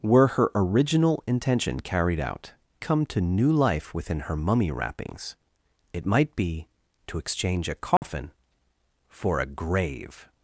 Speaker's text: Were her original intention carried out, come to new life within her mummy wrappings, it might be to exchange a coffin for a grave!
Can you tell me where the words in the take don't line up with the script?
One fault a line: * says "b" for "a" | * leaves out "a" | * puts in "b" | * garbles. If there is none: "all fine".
all fine